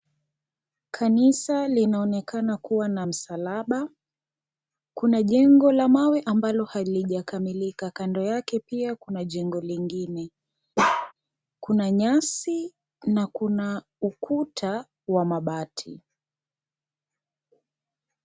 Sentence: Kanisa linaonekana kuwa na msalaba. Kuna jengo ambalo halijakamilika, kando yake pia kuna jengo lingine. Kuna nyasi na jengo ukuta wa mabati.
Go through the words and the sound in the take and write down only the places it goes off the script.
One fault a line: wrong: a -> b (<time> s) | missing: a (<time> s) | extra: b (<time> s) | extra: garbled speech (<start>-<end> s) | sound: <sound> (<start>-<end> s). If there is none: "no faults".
extra: la mawe (5.7 s)
sound: bark (10.8-11.1 s)
wrong: jengo -> kuna (13.3 s)